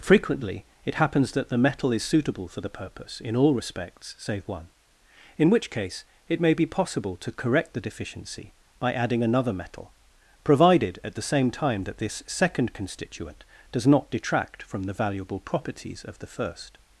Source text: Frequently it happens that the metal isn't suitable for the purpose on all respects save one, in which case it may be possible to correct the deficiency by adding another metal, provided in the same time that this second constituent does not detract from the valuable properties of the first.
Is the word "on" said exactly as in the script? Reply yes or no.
no